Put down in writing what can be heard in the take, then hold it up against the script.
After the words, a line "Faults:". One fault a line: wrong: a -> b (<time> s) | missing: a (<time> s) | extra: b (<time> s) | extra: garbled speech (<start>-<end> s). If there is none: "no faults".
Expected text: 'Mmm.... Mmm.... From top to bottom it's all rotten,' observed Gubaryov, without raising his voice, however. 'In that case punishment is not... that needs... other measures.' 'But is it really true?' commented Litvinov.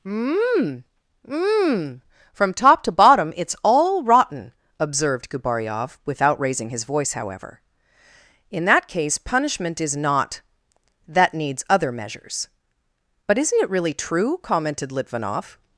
'Mmm.... Mmm.... From top to bottom it's all rotten,' observed Gubaryov, without raising his voice, however. 'In that case punishment is not... that needs... other measures.' 'But isn't it really true?' commented Litvinov.
Faults:
wrong: is -> isn't (13.4 s)